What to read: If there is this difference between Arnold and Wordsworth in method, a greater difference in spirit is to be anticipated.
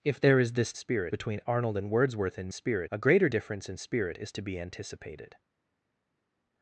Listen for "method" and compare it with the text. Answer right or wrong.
wrong